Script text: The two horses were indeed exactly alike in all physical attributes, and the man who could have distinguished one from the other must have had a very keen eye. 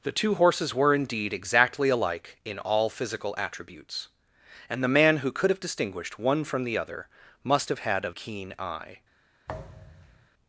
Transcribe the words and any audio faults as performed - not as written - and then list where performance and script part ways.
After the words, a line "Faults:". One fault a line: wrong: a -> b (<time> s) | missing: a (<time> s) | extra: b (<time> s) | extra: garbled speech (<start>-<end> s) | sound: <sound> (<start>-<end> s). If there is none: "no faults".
The two horses were indeed exactly alike in all physical attributes, and the man who could have distinguished one from the other must have had a keen eye.
Faults:
missing: very (8.1 s)
sound: thud (9.5-10.3 s)